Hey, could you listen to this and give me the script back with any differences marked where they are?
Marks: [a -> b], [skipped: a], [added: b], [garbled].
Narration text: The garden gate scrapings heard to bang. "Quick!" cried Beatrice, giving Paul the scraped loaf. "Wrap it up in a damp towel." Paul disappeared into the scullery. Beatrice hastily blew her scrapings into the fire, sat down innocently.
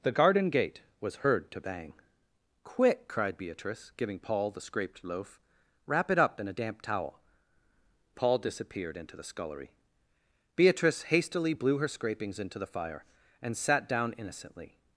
The garden gate [scrapings -> was] heard to bang. "Quick!" cried Beatrice, giving Paul the scraped loaf. "Wrap it up in a damp towel." Paul disappeared into the scullery. Beatrice hastily blew her scrapings into the fire, [added: and] sat down innocently.